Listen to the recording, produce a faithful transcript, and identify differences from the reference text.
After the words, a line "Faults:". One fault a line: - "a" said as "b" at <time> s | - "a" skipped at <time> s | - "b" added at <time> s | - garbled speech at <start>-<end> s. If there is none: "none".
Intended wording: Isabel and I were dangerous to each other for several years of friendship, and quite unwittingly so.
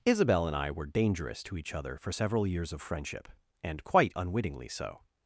Isabel and I were dangerous to each other for several years of friendship, and quite unwittingly so.
Faults:
none